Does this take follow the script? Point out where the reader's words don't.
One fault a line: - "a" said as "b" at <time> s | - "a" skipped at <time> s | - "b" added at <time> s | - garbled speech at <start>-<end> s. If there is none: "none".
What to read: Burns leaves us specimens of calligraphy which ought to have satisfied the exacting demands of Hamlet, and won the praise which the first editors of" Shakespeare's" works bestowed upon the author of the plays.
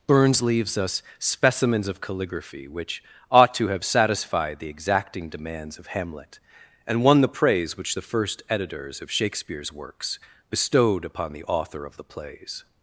none